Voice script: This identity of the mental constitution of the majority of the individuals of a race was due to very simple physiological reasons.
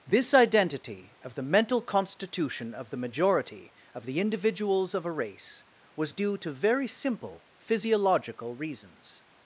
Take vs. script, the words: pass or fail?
pass